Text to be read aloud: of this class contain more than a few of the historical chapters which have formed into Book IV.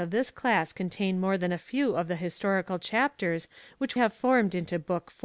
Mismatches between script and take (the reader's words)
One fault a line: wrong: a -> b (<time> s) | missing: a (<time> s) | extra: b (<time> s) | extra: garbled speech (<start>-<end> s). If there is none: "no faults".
no faults